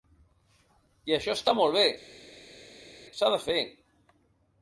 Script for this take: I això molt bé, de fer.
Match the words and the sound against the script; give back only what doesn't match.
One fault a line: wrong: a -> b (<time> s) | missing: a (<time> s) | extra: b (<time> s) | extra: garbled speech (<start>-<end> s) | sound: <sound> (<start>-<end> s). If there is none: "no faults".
extra: està (1.4 s)
extra: s'ha (3.2 s)